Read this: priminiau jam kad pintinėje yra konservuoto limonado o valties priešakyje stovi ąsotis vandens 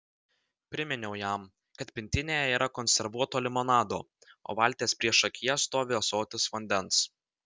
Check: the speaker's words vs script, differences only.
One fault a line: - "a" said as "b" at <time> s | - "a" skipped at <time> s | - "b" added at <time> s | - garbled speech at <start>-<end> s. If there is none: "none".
none